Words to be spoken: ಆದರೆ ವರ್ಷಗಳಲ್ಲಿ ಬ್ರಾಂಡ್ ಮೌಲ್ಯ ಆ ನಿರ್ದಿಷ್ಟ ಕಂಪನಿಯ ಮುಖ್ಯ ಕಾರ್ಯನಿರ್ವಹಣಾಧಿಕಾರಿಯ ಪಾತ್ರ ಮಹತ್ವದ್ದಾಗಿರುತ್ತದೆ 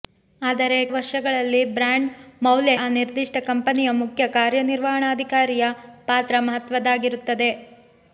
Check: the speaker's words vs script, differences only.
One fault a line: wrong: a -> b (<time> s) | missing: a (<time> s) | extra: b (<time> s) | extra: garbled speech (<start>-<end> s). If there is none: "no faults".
no faults